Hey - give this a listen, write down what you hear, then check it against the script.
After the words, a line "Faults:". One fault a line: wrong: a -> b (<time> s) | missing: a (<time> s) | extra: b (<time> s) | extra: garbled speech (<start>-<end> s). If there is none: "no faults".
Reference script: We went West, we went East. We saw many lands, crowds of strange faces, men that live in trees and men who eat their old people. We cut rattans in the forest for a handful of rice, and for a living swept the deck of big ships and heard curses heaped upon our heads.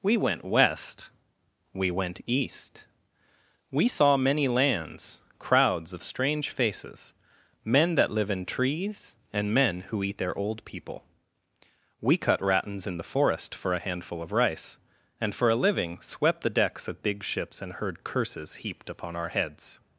We went West, we went East. We saw many lands, crowds of strange faces, men that live in trees and men who eat their old people. We cut rattans in the forest for a handful of rice, and for a living swept the decks of big ships and heard curses heaped upon our heads.
Faults:
wrong: deck -> decks (16.6 s)